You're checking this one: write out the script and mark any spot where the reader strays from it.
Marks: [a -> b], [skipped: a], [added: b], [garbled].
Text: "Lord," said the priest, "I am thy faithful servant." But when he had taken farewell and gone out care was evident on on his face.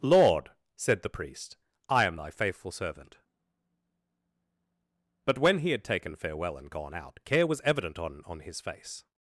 "Lord," said the priest, "I am thy faithful servant." But when he had taken farewell and gone out care was evident on on his face.